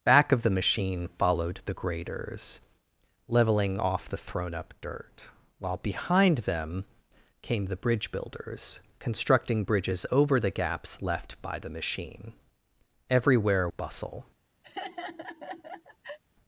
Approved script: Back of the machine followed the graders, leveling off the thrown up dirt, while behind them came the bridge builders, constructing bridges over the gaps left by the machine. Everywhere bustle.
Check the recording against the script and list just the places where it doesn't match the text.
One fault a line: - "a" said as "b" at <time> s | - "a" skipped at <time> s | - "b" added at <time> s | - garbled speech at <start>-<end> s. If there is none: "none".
none